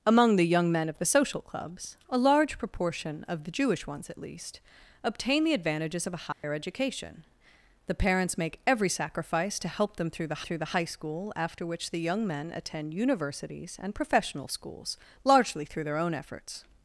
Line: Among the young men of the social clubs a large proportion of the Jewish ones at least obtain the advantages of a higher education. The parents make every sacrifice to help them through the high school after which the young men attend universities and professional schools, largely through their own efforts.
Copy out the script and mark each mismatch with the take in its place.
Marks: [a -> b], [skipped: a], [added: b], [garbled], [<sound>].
Among the young men of the social clubs a large proportion of the Jewish ones at least obtain the advantages of a higher [dropout] education. The parents make every sacrifice to help them through the [added: through the] high school after which the young men attend universities and professional schools, largely through their own efforts.